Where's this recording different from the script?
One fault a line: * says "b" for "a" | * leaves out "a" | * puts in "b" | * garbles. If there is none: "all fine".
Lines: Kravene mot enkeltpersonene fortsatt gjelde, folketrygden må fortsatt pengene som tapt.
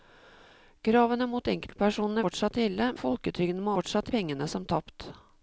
all fine